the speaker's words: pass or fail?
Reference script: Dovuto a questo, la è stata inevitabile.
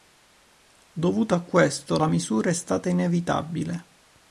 fail